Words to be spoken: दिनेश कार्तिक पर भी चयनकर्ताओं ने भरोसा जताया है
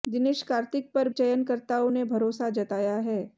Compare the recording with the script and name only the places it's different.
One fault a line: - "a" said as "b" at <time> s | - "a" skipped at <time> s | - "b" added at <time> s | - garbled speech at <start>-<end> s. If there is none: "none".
- "भी" skipped at 1.1 s